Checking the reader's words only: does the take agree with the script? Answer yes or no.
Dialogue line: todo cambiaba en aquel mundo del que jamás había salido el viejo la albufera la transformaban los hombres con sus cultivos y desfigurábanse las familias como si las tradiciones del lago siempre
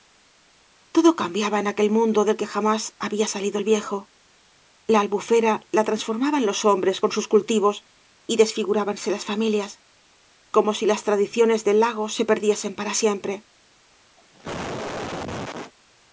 no